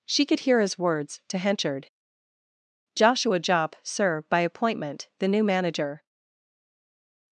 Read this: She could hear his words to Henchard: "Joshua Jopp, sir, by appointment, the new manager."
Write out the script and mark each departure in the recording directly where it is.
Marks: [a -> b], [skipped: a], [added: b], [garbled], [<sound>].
She could hear his words to Henchard: "Joshua Jopp, sir, by appointment, the new manager."